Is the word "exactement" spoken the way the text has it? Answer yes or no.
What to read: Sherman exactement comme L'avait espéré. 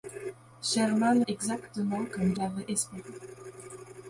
yes